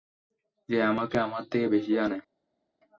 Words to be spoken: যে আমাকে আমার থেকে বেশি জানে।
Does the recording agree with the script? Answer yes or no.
yes